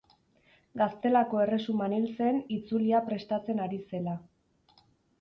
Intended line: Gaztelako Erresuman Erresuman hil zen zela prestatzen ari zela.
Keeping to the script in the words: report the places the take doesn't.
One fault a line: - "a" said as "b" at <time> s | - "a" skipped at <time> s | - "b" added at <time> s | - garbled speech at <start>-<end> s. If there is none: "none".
- "Erresuman" skipped at 1.9 s
- "zela" said as "itzulia" at 2.6 s